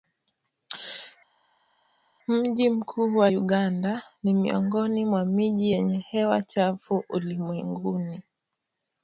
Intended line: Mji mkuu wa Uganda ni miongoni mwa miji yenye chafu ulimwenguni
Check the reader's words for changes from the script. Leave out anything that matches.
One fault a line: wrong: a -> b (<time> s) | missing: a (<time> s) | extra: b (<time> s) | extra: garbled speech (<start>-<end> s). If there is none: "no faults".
extra: hewa (6.0 s)